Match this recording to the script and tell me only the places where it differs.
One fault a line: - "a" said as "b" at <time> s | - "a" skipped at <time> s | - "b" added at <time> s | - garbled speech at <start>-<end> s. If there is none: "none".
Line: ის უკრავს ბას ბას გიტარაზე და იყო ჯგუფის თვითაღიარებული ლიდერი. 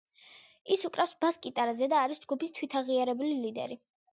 - "ბას" skipped at 1.4 s
- "იყო" said as "არის" at 2.1 s